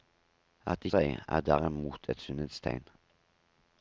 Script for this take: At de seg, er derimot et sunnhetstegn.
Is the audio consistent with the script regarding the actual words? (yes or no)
yes